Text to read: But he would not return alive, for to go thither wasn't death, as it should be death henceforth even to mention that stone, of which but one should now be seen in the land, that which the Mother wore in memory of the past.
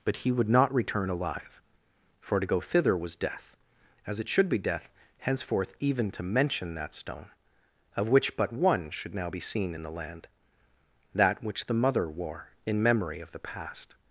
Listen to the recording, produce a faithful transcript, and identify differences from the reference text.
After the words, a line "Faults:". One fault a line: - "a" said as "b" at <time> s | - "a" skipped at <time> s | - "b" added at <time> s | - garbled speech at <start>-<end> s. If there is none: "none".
But he would not return alive, for to go thither was death, as it should be death henceforth even to mention that stone, of which but one should now be seen in the land, that which the Mother wore in memory of the past.
Faults:
- "wasn't" said as "was" at 3.0 s